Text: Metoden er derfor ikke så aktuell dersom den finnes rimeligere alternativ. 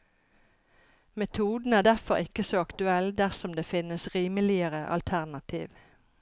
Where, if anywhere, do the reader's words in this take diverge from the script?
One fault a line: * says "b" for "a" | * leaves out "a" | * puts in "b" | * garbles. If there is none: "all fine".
* says "det" for "den"